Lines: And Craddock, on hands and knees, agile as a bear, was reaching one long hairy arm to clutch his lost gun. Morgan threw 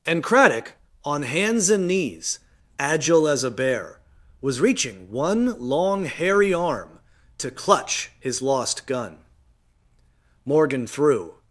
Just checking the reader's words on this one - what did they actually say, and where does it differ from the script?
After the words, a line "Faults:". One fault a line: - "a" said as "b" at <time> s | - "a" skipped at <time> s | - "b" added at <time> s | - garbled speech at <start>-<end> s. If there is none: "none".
And Craddock, on hands and knees, agile as a bear, was reaching one long hairy arm to clutch his lost gun. Morgan threw
Faults:
none